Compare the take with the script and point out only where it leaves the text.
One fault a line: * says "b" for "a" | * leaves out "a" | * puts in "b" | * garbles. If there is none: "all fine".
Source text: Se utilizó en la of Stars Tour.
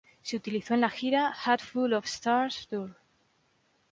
* puts in "gira Hat Full"